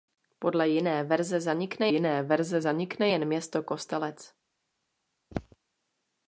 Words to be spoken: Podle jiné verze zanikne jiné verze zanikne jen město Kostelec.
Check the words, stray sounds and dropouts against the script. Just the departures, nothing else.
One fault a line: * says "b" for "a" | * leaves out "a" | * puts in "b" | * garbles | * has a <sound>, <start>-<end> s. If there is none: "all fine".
* has a throat clearing, 5.3-5.6 s